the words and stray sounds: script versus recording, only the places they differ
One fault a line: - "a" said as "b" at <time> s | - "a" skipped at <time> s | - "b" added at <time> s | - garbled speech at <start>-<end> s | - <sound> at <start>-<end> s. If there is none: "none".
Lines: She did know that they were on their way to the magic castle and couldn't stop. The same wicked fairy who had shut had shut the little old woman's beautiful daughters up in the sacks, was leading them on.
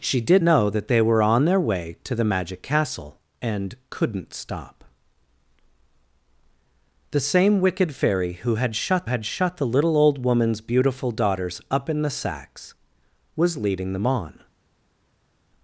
none